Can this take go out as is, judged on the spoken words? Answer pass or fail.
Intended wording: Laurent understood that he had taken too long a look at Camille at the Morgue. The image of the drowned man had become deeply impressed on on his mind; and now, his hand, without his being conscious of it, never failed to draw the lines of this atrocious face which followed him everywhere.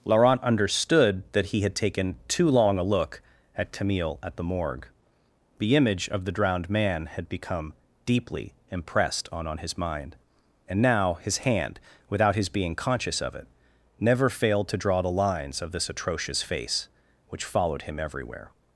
pass